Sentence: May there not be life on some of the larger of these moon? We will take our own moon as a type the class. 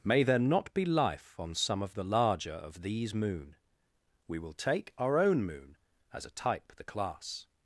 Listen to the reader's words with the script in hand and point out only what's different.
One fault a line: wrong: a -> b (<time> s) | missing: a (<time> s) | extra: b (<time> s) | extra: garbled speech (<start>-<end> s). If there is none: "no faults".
no faults